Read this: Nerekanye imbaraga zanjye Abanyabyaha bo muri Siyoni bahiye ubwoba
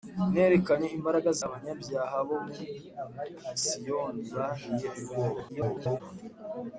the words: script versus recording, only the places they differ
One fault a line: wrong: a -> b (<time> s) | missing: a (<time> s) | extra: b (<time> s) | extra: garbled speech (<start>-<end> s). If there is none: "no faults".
missing: zanjye (1.3 s)
extra: garbled speech (5.5-6.0 s)